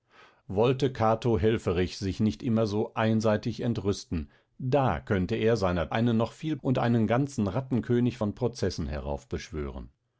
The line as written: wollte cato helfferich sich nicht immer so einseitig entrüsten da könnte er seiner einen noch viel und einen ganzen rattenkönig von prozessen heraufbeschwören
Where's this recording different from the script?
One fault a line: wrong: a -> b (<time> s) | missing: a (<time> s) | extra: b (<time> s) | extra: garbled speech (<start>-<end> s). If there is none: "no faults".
no faults